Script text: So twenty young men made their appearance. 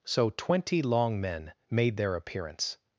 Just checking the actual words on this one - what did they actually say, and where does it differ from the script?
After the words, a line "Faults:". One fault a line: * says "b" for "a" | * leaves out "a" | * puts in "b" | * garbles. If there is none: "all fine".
So twenty long men made their appearance.
Faults:
* says "long" for "young"